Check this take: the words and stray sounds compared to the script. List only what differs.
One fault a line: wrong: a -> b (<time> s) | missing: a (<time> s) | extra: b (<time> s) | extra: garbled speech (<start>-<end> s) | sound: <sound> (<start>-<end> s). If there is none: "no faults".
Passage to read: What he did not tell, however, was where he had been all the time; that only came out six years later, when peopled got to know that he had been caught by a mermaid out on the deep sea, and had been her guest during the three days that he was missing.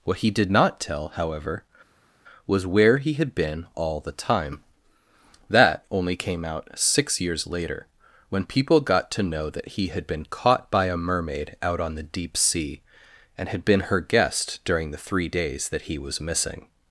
wrong: peopled -> people (8.5 s)